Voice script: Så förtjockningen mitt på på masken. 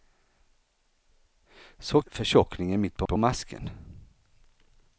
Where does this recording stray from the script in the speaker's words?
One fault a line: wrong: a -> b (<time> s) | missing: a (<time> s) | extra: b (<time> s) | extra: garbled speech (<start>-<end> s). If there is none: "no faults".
no faults